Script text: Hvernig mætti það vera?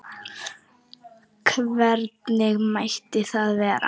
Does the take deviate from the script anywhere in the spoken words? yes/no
no